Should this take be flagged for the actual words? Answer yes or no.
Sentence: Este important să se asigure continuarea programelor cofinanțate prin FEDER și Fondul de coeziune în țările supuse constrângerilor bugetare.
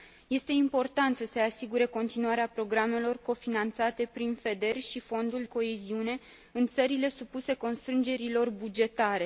yes